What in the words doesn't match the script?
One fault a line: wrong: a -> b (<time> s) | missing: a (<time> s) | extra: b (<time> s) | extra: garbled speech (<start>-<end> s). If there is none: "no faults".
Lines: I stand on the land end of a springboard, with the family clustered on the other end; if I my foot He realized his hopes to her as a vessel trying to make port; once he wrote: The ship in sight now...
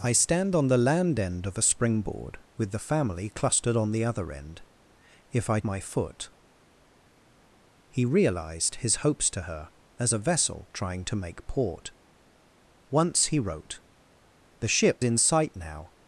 no faults